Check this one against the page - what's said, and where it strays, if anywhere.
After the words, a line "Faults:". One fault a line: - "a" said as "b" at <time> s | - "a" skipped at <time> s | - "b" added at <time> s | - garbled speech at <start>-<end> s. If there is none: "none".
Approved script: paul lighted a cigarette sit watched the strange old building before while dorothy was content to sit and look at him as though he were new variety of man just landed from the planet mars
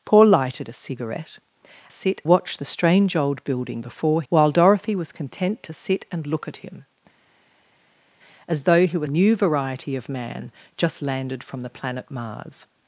paul lighted a cigarette sit watched the strange old building before while dorothy was content to sit and look at him as though he were new variety of man just landed from the planet mars
Faults:
none